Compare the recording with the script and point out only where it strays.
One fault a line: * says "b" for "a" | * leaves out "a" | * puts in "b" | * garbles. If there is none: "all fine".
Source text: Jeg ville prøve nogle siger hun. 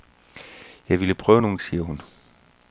all fine